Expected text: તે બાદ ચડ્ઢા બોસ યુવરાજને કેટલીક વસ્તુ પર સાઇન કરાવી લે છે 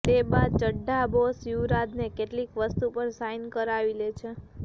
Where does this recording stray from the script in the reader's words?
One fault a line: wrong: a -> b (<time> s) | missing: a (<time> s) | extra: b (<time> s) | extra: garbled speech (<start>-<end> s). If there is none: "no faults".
no faults